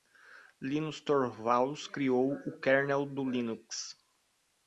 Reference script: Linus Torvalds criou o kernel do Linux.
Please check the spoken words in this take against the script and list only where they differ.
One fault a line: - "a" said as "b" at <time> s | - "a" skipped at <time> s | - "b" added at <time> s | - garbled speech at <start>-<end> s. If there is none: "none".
none